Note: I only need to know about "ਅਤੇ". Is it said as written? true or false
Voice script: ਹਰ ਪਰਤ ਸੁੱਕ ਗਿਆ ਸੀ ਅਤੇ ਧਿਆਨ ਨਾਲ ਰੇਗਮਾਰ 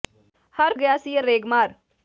false